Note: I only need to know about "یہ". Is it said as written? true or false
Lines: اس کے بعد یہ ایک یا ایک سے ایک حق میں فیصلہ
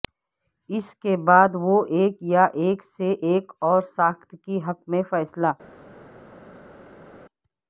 false